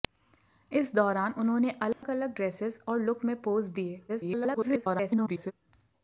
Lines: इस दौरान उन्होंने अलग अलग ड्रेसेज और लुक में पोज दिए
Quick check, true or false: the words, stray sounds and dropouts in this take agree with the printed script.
false